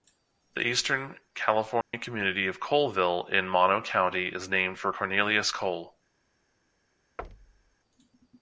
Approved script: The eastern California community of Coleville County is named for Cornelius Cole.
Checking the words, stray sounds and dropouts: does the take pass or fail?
fail